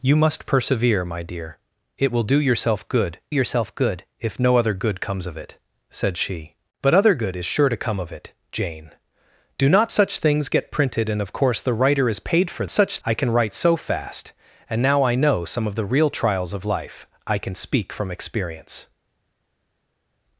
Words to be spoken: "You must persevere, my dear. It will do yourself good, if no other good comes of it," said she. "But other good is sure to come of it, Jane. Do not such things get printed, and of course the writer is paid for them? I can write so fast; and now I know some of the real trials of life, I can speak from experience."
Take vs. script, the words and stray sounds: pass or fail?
fail